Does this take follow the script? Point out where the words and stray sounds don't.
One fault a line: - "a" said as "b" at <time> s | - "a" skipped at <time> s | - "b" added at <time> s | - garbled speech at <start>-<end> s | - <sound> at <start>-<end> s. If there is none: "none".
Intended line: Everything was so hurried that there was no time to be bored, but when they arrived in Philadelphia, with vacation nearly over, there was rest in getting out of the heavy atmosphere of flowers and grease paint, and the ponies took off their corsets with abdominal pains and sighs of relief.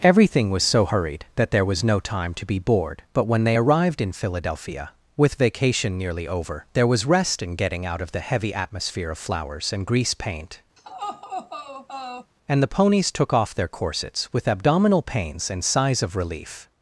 - laugh at 10.8-12.3 s